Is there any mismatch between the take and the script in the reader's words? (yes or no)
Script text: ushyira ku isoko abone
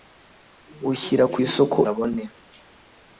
no